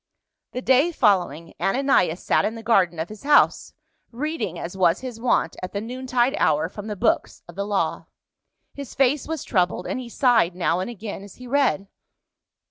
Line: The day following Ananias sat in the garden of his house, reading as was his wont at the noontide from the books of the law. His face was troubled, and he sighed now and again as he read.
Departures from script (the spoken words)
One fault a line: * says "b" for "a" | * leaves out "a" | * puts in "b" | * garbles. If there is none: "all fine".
* puts in "hour"